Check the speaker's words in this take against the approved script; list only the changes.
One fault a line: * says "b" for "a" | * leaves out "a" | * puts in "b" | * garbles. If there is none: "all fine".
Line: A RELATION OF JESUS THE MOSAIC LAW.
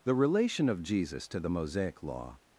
* says "THE" for "A"
* puts in "TO"